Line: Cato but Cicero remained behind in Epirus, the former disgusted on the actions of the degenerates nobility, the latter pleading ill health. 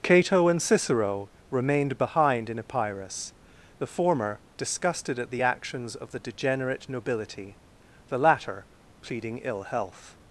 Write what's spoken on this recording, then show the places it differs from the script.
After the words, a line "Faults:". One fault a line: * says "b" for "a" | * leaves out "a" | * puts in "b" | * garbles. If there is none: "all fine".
Cato and Cicero remained behind in Epirus, the former disgusted at the actions of the degenerate nobility, the latter pleading ill health.
Faults:
* says "and" for "but"
* says "at" for "on"
* says "degenerate" for "degenerates"